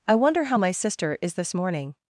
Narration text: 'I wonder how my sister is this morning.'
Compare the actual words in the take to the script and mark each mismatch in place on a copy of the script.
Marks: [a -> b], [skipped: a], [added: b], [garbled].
'I wonder how my sister is this morning.'